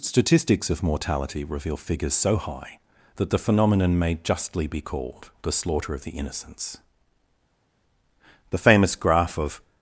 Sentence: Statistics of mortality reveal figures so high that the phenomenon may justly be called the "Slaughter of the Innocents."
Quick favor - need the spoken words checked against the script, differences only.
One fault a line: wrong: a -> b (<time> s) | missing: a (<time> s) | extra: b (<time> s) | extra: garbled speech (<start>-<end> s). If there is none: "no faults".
extra: The famous graph of (8.5 s)